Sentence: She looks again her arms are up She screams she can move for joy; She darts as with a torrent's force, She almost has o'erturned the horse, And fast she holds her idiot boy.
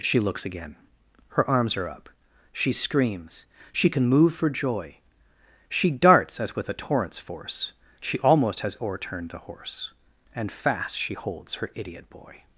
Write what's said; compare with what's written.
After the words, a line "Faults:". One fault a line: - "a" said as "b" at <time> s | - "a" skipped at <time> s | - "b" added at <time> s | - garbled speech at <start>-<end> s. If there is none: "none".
She looks again her arms are up She screams she can move for joy; She darts as with a torrent's force, She almost has o'erturned the horse, And fast she holds her idiot boy.
Faults:
none